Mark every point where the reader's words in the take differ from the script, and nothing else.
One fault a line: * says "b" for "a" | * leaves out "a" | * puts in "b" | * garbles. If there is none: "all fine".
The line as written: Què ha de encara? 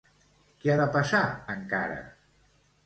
* puts in "passar"